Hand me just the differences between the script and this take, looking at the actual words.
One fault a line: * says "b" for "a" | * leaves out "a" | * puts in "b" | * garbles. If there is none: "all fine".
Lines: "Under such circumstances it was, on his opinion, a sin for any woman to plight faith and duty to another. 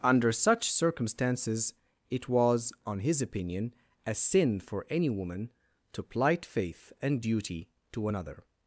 all fine